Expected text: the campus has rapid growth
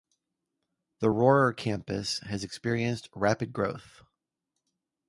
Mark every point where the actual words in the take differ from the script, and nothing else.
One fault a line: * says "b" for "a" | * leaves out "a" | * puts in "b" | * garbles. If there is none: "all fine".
* puts in "rohrer"
* puts in "experienced"